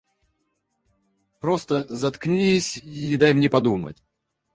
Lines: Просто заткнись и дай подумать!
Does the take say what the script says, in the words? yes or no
no